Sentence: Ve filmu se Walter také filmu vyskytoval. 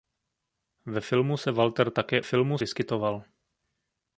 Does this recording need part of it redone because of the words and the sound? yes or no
no